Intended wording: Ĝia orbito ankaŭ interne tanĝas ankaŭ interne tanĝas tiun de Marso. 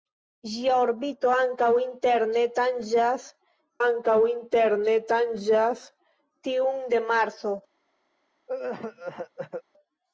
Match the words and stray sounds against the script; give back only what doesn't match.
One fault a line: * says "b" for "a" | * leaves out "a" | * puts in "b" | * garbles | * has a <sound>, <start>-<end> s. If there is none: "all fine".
* has a cough, 8.5-9.6 s